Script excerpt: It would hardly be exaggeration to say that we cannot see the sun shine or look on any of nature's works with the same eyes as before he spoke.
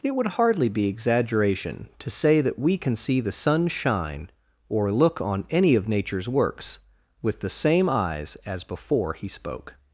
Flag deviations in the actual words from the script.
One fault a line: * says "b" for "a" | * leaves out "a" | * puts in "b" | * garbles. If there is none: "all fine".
* says "can" for "cannot"